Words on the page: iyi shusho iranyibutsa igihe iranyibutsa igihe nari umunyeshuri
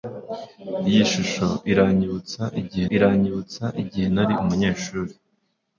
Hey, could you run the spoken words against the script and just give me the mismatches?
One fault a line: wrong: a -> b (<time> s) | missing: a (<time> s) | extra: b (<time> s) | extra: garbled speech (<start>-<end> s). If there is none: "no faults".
no faults